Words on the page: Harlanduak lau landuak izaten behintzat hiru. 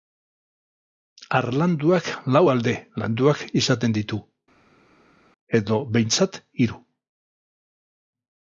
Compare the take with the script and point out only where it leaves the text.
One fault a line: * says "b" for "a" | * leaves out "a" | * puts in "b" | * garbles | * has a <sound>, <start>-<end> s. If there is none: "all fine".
* puts in "alde"
* puts in "ditu edo"